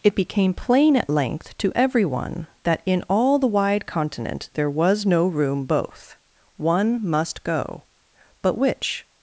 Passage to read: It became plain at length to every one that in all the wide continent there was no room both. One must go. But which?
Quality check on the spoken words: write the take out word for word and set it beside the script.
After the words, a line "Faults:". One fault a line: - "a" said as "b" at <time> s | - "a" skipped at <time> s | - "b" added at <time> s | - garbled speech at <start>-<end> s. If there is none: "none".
It became plain at length to every one that in all the wide continent there was no room both. One must go. But which?
Faults:
none